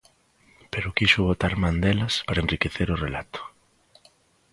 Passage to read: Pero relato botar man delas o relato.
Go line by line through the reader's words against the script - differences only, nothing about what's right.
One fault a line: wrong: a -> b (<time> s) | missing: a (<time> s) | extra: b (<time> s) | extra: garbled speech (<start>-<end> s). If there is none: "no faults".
wrong: relato -> quixo (1.0 s)
extra: para enriquecer (2.3 s)